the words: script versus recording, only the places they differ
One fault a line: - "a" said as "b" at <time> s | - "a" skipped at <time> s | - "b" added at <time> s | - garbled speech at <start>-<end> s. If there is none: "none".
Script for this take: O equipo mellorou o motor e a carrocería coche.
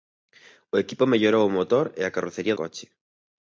none